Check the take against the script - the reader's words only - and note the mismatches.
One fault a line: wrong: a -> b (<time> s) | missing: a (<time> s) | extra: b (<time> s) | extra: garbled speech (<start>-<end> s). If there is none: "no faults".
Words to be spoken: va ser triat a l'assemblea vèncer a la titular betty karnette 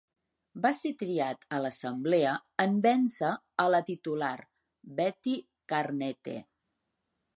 extra: en (2.7 s)